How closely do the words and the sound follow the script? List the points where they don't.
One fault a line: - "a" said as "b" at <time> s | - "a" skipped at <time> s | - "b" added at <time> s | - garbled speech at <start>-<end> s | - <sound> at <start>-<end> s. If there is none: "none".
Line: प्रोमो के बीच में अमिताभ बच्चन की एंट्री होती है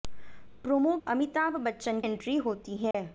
- "के बीच में" skipped at 0.9 s
- "की" skipped at 2.0 s
- dropout at 2.9-2.9 s